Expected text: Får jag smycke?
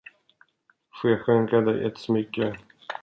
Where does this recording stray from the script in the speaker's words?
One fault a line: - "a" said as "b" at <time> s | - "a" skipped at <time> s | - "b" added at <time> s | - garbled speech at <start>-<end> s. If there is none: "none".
- "skänka dig ett" added at 1.2 s